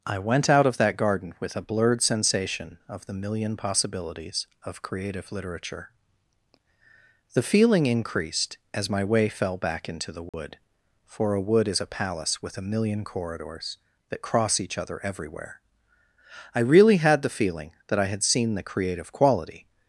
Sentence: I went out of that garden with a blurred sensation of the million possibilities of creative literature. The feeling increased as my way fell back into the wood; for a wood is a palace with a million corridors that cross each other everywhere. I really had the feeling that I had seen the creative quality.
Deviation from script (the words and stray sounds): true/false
true